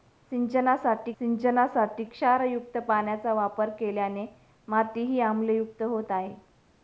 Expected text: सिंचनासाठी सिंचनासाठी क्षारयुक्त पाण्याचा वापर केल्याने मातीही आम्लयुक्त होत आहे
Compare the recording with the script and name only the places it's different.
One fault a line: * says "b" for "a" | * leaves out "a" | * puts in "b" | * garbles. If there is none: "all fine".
all fine